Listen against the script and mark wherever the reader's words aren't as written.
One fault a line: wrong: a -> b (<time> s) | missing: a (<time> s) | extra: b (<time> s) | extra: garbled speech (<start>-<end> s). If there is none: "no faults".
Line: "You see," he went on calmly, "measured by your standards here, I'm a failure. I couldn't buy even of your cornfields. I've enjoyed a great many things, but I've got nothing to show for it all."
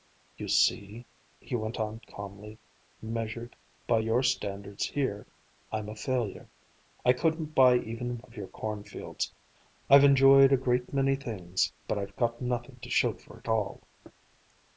no faults